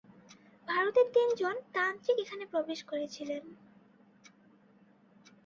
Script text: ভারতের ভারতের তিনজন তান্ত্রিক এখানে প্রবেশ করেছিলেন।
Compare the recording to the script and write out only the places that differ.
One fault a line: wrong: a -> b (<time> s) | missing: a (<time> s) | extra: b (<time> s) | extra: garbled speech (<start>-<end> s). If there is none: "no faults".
missing: ভারতের (1.1 s)